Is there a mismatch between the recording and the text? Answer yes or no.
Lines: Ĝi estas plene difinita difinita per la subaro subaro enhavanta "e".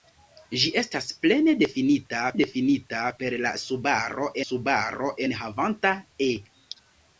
no